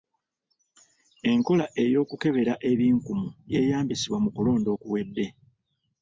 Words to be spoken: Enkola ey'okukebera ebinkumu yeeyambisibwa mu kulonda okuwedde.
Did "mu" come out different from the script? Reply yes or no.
no